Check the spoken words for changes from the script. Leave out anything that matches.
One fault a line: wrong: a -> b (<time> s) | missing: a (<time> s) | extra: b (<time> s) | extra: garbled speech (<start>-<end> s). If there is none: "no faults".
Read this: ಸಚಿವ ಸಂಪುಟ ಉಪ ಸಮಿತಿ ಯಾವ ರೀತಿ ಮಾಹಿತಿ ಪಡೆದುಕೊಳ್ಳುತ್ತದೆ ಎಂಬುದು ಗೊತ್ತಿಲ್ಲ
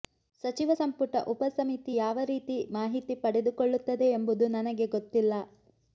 extra: ನನಗೆ (4.6 s)